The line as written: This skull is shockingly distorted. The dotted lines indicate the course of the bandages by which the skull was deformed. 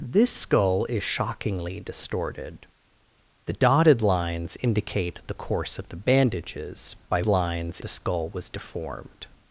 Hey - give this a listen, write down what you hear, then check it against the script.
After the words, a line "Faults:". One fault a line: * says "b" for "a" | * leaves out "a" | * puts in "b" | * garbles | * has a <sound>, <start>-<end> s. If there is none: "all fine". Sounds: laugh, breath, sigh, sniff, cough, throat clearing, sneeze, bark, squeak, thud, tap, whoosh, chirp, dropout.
This skull is shockingly distorted. The dotted lines indicate the course of the bandages by lines the skull was deformed.
Faults:
* says "lines" for "which"